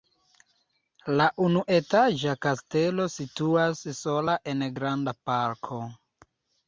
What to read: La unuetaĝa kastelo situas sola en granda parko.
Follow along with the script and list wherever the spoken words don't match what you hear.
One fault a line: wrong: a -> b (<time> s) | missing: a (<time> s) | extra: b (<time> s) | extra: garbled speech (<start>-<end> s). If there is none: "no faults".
no faults